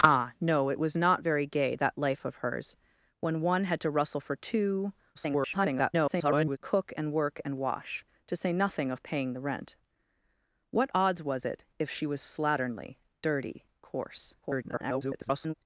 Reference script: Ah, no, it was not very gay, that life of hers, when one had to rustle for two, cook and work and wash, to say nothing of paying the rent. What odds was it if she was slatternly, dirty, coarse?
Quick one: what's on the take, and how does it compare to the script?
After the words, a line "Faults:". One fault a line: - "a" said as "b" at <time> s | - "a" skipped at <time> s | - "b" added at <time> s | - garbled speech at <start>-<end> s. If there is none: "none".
Ah, no, it was not very gay, that life of hers, when one had to rustle for two, [garbled] cook and work and wash, to say nothing of paying the rent. What odds was it if she was slatternly, dirty, coarse? [garbled]
Faults:
- garbled speech at 5.1-6.6 s
- garbled speech at 14.4-15.5 s